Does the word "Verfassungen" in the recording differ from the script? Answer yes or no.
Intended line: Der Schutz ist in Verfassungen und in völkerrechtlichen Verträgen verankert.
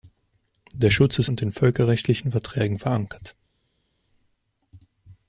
yes